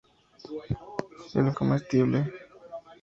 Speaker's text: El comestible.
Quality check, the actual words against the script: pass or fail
pass